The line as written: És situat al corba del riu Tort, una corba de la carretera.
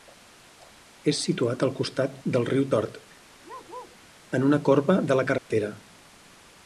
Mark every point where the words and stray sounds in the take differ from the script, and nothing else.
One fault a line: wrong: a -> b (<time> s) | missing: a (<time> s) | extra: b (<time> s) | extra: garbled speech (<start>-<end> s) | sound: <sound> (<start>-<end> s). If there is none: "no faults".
wrong: corba -> costat (1.8 s)
sound: bark (3.4-4.0 s)
extra: en (4.4 s)
sound: dropout (5.4-5.5 s)